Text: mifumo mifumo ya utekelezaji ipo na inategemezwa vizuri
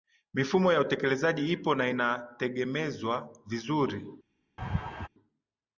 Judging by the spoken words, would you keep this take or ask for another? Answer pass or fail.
fail